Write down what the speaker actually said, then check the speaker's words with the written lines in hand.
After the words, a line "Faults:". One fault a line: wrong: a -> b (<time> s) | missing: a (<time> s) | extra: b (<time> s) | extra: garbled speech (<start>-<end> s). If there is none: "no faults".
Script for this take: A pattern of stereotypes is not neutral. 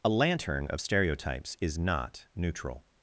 A lantern of stereotypes is not neutral.
Faults:
wrong: pattern -> lantern (0.1 s)